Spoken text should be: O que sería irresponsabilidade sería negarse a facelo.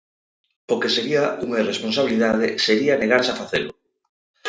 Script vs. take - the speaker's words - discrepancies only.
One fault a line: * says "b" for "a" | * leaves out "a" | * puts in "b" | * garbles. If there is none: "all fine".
* puts in "unha"